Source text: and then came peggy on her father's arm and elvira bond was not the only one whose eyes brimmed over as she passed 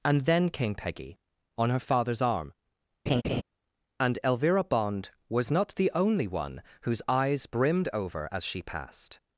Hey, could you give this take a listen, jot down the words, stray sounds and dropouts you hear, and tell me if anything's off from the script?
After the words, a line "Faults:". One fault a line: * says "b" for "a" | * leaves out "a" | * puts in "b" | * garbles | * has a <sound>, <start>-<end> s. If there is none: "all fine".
and then came peggy on her father's arm and elvira bond was not the only one whose eyes brimmed over as she passed
Faults:
* has a laugh, 3.1-3.4 s